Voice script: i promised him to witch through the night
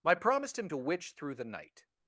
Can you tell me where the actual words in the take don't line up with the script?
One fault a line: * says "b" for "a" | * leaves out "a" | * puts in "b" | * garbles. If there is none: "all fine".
all fine